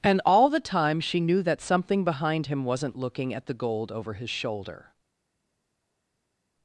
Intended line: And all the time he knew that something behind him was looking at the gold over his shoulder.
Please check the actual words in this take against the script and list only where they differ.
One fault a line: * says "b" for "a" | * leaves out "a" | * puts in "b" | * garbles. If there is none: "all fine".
* says "she" for "he"
* says "wasn't" for "was"